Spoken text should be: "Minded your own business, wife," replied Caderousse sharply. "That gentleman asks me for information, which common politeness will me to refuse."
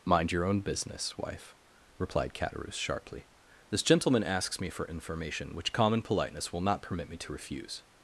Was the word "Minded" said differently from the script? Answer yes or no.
yes